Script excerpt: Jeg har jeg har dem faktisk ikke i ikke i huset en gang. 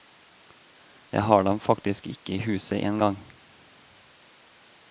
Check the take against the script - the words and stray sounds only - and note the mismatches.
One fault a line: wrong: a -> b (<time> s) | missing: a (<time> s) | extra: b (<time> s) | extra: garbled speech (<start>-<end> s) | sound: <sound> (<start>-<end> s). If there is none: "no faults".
missing: jeg har (1.4 s)
missing: ikke i (2.4 s)